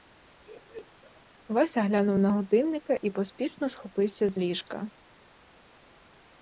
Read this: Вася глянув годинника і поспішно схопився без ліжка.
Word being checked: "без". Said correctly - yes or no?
no